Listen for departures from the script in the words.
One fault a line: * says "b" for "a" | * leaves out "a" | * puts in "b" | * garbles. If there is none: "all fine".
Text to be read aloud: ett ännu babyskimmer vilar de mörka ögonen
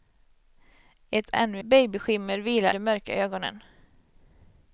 all fine